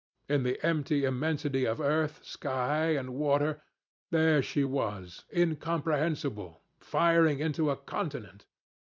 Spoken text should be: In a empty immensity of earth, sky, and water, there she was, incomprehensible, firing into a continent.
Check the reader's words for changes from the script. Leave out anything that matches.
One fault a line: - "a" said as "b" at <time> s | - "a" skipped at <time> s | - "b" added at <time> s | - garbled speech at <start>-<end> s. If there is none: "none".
- "a" said as "the" at 0.4 s